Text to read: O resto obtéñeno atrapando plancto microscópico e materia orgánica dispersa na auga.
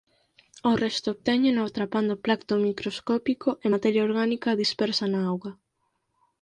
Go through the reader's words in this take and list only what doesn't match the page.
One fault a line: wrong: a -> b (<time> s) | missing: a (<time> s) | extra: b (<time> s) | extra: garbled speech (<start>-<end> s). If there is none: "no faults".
no faults